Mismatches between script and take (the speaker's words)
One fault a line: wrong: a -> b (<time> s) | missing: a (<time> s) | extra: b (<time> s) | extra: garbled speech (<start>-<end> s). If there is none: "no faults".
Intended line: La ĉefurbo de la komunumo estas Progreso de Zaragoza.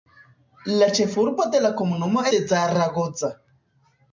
missing: estas Progreso (2.2 s)